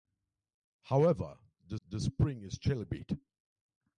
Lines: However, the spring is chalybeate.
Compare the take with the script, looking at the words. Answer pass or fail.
fail